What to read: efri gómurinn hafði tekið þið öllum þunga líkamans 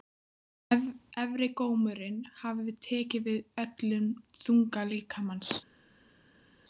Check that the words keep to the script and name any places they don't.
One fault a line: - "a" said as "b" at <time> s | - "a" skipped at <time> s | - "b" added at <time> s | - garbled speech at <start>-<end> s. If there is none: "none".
- "þið" said as "við" at 3.3 s